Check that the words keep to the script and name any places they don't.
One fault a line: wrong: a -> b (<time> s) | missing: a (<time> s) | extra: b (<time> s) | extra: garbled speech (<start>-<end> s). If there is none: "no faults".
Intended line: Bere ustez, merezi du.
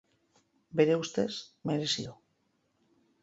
no faults